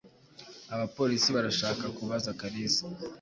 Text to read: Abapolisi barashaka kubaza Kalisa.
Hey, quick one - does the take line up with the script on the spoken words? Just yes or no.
yes